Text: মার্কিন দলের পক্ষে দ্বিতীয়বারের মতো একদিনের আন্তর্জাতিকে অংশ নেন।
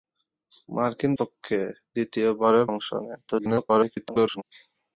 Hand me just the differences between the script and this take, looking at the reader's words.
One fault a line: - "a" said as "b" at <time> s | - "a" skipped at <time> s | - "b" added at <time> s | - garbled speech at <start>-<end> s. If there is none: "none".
- "দলের" skipped at 1.1 s
- "মতো একদিনের আন্তর্জাতিকে" skipped at 2.7 s
- garbled speech at 3.3-4.4 s